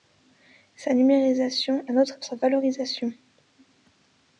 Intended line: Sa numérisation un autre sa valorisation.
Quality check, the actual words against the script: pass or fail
pass